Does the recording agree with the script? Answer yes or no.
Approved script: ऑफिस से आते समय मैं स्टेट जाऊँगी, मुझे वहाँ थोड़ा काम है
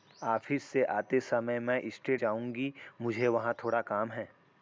yes